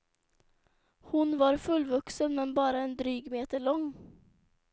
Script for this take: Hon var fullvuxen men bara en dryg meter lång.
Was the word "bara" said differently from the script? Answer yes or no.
no